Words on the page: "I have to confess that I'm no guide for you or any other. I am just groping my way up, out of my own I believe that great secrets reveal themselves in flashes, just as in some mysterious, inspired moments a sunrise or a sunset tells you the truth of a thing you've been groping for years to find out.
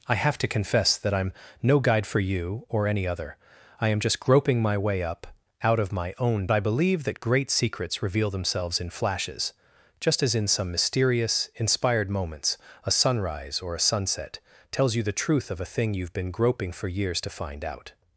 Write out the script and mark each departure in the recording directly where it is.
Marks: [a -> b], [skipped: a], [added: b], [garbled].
"I have to confess that I'm no guide for you or any other. I am just groping my way up, out of my own I believe that great secrets reveal themselves in flashes, just as in some mysterious, inspired moments a sunrise or a sunset tells you the truth of a thing you've been groping for years to find out.